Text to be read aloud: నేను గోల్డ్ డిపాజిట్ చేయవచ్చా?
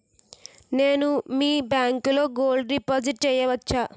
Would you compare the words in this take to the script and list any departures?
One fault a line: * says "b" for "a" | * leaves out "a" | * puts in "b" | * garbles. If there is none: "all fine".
* puts in "మీ బ్యాంకులో"